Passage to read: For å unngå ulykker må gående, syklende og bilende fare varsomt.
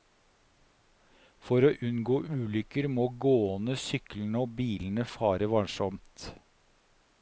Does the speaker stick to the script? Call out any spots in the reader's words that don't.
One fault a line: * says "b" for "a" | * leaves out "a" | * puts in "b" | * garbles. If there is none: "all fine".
all fine